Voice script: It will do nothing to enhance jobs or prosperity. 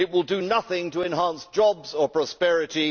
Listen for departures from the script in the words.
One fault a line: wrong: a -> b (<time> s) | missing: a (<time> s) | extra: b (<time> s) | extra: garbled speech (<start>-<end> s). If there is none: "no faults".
no faults